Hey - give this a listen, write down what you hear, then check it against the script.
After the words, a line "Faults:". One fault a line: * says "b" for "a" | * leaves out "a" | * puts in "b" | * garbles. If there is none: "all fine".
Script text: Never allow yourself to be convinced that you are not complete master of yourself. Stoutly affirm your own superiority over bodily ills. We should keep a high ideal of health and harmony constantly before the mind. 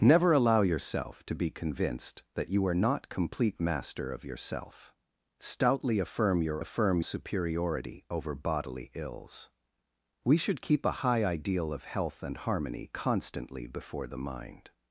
Never allow yourself to be convinced that you are not complete master of yourself. Stoutly affirm your affirm superiority over bodily ills. We should keep a high ideal of health and harmony constantly before the mind.
Faults:
* says "affirm" for "own"